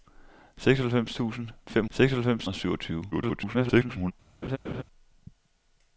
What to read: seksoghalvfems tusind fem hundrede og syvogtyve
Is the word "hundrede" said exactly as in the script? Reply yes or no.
no